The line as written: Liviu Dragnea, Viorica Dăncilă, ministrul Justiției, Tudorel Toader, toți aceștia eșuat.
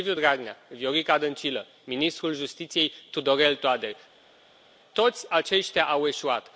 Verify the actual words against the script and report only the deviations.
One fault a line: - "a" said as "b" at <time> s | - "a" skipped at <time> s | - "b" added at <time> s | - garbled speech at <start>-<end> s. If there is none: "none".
- "au" added at 5.9 s